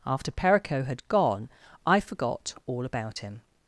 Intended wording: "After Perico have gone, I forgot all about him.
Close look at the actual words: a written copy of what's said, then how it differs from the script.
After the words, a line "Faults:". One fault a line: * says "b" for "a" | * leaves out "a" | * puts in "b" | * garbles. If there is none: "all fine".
"After Perico had gone, I forgot all about him.
Faults:
* says "had" for "have"